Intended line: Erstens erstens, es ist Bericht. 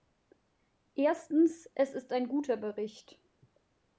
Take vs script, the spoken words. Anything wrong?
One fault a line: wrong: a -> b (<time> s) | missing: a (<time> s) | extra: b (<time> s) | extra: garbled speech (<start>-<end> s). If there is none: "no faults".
missing: erstens (1.7 s)
extra: ein guter (2.1 s)